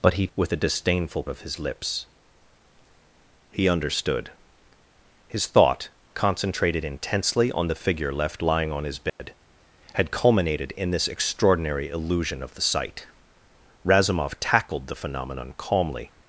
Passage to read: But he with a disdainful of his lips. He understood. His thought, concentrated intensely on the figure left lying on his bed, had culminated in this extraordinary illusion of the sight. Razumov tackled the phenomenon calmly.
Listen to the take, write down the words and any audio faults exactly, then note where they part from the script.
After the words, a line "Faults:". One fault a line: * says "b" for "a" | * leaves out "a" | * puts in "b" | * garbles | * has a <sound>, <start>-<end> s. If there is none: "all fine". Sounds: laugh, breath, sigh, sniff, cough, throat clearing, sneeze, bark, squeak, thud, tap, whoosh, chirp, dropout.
But he with a disdainful of his lips. He understood. His thought, concentrated intensely on the figure left lying on his bed, had culminated in this extraordinary illusion of the sight. Razumov tackled the phenomenon calmly.
Faults:
* has a dropout, 9.1-9.2 s